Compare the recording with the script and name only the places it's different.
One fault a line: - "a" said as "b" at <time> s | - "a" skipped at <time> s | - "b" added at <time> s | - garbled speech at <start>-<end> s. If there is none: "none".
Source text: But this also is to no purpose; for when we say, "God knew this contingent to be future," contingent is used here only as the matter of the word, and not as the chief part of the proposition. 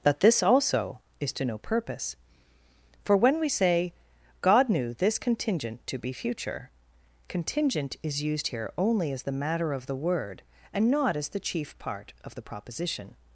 - "But" said as "That" at 0.0 s